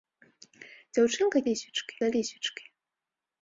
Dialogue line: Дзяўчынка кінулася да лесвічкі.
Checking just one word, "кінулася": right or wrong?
wrong